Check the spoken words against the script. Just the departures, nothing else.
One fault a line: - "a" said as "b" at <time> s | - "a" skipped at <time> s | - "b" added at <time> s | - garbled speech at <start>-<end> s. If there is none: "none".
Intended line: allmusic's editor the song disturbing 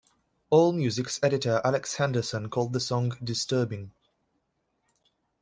- "alex henderson called" added at 1.6 s